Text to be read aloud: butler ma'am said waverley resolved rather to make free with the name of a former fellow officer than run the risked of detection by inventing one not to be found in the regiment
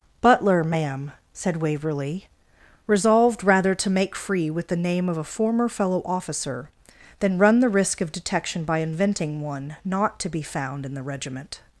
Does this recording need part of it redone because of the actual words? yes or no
yes